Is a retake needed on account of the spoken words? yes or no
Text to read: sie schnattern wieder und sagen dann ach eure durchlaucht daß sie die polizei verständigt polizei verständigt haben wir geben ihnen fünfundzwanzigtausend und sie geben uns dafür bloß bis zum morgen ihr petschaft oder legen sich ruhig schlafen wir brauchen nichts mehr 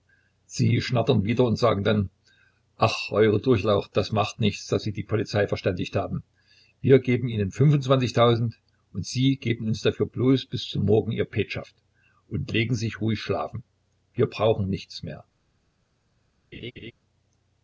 yes